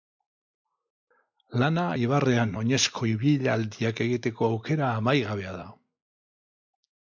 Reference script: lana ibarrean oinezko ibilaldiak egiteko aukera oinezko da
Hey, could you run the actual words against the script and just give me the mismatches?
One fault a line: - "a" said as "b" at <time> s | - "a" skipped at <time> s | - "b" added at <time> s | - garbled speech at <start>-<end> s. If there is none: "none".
- "oinezko" said as "amaigabea" at 5.0 s